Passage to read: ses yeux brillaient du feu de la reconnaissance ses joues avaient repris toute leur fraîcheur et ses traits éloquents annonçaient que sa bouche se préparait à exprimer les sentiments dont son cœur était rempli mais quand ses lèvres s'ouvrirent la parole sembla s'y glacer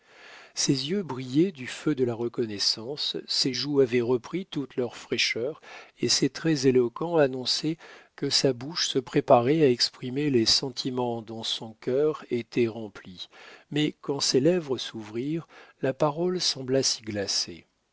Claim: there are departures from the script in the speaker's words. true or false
false